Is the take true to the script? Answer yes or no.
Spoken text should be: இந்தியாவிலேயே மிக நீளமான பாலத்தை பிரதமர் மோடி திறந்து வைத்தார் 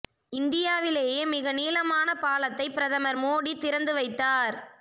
yes